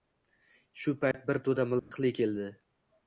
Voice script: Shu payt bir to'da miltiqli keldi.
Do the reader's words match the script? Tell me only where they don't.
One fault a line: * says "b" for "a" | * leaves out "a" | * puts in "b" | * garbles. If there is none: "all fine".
all fine